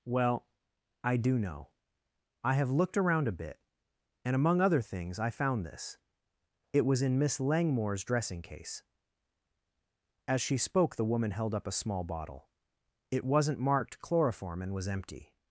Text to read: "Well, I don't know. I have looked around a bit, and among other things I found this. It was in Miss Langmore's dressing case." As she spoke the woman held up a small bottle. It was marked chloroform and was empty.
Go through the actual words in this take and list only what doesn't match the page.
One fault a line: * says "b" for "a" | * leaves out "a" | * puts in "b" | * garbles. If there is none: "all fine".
* says "do" for "don't"
* says "wasn't" for "was"